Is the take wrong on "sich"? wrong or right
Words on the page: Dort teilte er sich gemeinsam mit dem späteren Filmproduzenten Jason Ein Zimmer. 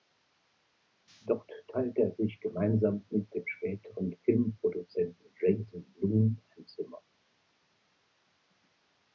right